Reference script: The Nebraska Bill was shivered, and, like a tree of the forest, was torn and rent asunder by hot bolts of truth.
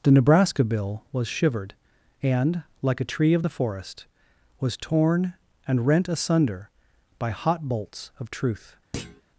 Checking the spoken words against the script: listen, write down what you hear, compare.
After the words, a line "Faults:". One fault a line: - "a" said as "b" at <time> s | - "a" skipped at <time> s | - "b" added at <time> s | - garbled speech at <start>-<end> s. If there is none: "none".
The Nebraska Bill was shivered, and, like a tree of the forest, was torn and rent asunder by hot bolts of truth.
Faults:
none